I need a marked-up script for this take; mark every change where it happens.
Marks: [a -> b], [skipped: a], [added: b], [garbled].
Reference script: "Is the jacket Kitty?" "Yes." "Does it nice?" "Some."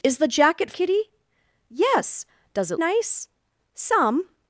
"Is the jacket Kitty?" "Yes." "Does it nice?" "Some."